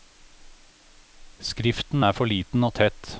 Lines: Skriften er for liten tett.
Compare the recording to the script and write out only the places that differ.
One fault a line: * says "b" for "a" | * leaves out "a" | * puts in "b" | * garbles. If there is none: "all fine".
* puts in "og"